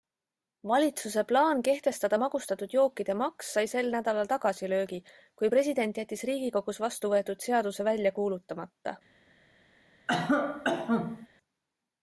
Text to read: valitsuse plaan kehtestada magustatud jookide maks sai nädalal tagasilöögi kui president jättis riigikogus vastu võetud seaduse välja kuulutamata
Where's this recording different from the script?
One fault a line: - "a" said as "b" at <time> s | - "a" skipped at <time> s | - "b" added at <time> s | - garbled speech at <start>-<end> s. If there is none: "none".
- "sel" added at 3.7 s